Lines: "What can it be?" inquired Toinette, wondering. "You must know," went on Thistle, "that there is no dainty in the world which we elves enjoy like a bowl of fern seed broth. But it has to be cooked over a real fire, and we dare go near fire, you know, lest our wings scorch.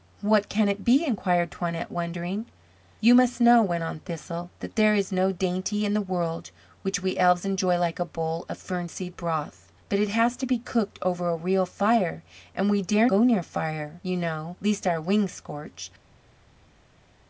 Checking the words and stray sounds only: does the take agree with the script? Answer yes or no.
yes